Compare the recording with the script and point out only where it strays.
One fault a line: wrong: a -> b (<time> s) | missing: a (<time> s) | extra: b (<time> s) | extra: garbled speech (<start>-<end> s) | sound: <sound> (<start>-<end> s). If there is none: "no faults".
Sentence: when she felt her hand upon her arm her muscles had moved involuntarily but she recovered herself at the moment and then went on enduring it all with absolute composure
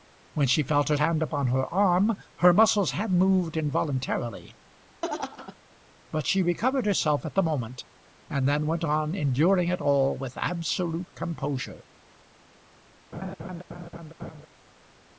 sound: laugh (5.0-5.6 s)
sound: laugh (13.1-14.5 s)